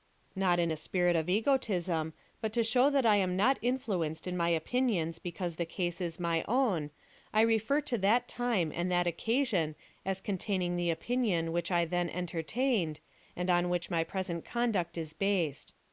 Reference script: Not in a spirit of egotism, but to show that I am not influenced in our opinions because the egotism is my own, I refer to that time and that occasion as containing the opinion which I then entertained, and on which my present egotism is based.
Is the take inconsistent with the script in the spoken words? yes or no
yes